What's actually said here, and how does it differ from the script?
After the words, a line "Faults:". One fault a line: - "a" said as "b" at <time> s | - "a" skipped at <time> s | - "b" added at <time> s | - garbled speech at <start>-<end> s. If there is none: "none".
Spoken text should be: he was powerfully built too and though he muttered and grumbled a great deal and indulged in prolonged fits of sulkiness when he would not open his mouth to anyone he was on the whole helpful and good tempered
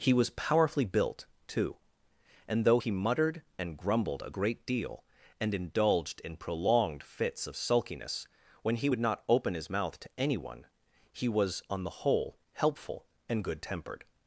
he was powerfully built too and though he muttered and grumbled a great deal and indulged in prolonged fits of sulkiness when he would not open his mouth to anyone he was on the whole helpful and good tempered
Faults:
none